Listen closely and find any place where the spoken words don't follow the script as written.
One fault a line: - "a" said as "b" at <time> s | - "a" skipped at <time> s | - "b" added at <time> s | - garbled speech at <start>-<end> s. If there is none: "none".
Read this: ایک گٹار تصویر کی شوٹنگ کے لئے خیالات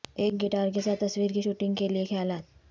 - "کے ساتھ" added at 0.7 s